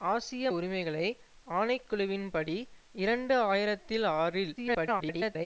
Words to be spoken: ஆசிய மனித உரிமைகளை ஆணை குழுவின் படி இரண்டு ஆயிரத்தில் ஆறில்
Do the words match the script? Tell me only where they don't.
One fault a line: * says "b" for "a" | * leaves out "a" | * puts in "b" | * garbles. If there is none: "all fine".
* leaves out "மனித"
* garbles